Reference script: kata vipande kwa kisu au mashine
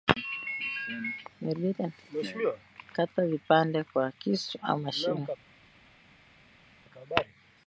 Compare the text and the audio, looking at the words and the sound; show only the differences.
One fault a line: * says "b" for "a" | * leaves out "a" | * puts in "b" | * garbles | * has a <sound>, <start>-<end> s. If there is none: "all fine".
all fine